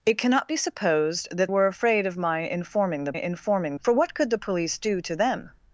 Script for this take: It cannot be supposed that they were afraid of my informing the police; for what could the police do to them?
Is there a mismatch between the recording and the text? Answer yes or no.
yes